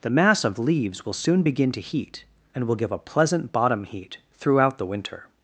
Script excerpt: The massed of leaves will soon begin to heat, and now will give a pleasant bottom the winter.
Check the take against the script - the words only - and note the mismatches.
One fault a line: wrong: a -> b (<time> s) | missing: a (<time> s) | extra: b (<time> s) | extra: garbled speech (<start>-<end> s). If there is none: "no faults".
wrong: massed -> mass (0.1 s)
missing: now (2.7 s)
extra: heat throughout (3.8 s)